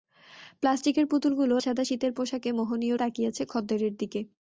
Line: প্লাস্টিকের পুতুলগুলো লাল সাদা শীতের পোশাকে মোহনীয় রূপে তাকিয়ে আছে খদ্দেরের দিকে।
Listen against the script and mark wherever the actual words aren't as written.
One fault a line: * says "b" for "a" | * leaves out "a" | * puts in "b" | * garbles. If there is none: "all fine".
* leaves out "লাল"
* leaves out "রূপে"